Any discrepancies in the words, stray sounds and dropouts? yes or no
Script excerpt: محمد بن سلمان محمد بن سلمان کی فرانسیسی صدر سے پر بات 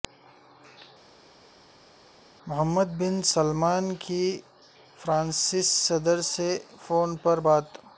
yes